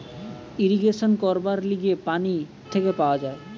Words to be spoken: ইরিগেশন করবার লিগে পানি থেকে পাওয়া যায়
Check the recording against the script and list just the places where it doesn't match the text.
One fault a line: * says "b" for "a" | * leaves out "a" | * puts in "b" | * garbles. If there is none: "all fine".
all fine